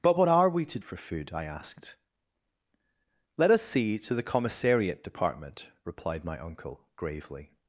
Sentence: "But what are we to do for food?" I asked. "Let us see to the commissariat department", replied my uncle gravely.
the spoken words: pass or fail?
fail